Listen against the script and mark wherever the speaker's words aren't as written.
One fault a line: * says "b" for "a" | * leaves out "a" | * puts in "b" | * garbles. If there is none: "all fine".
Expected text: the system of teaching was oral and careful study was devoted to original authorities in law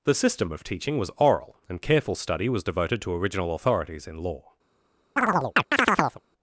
all fine